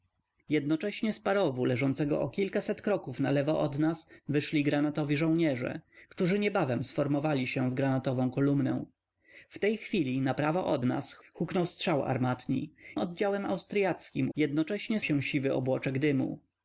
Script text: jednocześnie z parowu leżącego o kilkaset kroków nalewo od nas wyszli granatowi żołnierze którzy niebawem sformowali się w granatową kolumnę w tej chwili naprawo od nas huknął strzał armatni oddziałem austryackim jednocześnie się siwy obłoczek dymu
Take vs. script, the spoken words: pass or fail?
pass